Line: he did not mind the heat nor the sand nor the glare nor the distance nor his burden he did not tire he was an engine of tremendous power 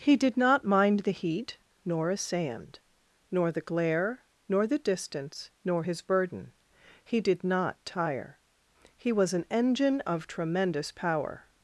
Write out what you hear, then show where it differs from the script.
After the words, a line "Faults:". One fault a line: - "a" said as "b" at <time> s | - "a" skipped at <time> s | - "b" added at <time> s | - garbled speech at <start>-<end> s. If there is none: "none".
he did not mind the heat nor a sand nor the glare nor the distance nor his burden he did not tire he was an engine of tremendous power
Faults:
- "the" said as "a" at 2.1 s